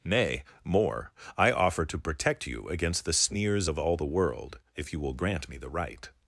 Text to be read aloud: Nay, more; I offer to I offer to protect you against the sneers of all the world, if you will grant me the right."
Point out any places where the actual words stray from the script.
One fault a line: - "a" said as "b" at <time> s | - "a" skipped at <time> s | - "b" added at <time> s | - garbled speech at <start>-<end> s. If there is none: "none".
- "I offer to" skipped at 2.0 s